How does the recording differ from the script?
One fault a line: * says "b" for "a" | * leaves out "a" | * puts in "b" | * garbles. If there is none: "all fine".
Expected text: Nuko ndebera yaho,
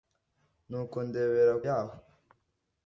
all fine